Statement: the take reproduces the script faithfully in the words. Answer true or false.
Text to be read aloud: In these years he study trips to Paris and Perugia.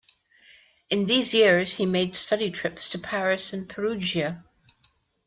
false